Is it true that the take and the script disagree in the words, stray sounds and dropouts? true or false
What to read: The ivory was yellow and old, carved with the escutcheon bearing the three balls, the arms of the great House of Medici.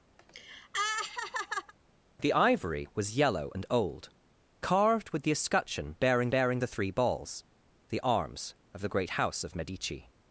true